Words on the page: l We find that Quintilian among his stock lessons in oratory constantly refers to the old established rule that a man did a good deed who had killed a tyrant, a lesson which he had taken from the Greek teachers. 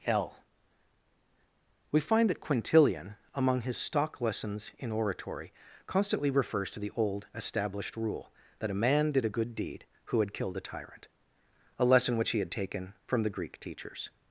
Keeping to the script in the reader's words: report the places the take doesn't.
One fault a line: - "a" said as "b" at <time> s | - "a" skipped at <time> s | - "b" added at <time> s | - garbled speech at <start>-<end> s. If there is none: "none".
none